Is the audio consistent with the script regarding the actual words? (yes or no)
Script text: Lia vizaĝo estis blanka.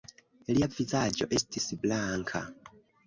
yes